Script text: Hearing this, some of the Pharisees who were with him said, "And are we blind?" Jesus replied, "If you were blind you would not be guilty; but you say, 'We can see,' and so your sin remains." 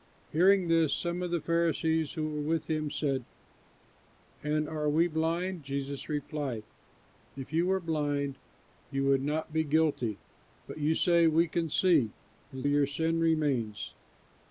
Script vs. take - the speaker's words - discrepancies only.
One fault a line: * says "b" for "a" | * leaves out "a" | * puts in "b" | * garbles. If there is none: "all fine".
* leaves out "so"